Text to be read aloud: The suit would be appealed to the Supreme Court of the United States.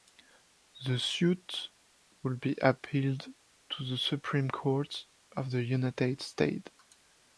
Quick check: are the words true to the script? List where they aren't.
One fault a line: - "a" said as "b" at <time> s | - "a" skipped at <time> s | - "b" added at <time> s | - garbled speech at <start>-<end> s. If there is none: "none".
none